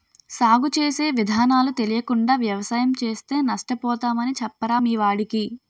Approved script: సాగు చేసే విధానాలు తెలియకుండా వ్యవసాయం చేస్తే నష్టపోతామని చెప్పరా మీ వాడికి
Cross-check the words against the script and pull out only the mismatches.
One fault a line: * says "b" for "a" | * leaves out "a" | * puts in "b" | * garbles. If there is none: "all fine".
all fine